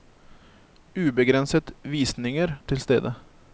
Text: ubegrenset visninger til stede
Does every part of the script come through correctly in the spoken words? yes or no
yes